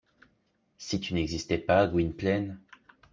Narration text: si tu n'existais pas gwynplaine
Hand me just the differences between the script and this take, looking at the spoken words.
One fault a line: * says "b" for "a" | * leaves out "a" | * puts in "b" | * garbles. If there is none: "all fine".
all fine